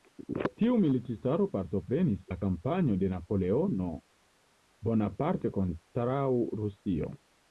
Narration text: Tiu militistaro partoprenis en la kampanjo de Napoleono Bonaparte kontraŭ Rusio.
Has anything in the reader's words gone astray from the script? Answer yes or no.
yes